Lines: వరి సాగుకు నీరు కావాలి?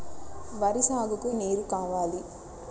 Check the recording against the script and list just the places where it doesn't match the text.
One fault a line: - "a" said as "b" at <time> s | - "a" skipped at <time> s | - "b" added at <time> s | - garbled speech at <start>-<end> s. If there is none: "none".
none